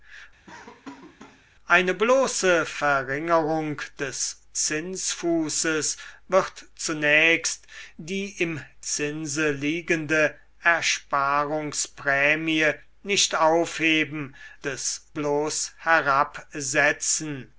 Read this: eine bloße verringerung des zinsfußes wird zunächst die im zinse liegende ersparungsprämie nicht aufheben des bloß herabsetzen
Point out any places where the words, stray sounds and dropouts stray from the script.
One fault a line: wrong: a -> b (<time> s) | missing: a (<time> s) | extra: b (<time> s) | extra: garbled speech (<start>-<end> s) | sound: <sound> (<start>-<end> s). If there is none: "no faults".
sound: laugh (0.5-1.4 s)